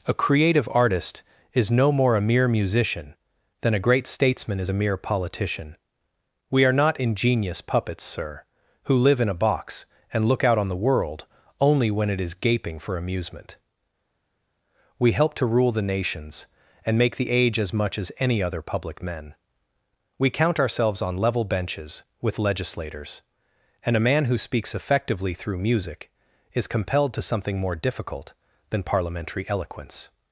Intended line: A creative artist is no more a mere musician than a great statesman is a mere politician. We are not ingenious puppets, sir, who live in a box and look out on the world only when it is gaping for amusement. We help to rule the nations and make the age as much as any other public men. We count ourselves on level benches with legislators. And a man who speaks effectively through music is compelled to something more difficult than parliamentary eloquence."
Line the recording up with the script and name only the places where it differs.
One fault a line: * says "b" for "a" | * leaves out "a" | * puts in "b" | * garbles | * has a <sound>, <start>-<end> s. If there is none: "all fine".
all fine